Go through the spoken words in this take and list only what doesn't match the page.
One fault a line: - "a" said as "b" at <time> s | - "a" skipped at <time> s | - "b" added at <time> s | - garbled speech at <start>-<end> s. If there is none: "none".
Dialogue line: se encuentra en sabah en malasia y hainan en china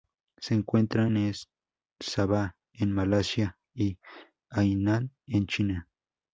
none